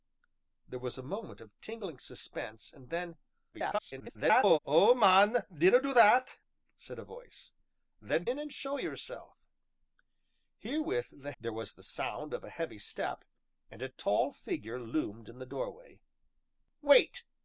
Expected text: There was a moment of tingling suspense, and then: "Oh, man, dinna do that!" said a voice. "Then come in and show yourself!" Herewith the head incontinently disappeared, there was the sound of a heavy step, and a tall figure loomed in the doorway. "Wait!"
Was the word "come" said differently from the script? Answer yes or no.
yes